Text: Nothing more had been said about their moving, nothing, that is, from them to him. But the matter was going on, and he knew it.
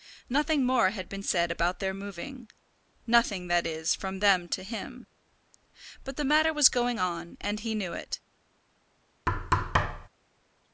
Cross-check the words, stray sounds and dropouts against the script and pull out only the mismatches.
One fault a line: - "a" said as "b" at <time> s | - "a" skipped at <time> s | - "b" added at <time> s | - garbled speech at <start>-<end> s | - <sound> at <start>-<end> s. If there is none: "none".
- thud at 9.3-10.1 s